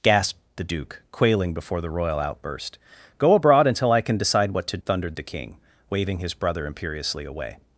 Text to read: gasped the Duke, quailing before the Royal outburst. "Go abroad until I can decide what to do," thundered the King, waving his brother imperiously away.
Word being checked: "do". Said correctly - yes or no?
no